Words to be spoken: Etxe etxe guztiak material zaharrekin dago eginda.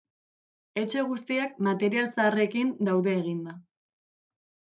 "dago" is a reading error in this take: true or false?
true